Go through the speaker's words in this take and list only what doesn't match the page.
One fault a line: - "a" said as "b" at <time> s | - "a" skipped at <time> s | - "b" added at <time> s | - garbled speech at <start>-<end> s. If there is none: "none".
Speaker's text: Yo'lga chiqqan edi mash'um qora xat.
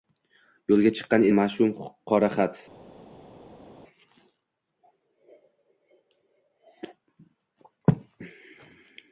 - "edi" skipped at 1.2 s